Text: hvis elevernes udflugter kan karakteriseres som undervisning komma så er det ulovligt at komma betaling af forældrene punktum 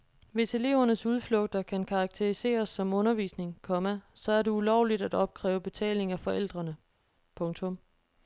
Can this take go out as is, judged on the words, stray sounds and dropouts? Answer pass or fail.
fail